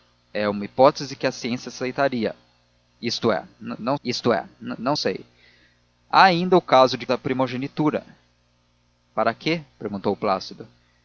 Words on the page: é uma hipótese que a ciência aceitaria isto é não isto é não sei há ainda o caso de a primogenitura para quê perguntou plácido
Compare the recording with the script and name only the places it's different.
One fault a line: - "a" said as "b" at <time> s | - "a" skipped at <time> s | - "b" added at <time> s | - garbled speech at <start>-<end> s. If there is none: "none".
none